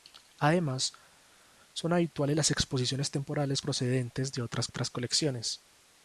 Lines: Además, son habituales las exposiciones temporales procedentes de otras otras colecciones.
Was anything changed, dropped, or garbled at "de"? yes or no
no